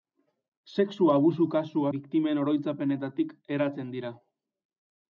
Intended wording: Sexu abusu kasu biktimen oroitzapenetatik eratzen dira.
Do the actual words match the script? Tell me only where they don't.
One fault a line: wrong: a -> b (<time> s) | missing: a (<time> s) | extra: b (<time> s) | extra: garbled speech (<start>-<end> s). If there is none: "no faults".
no faults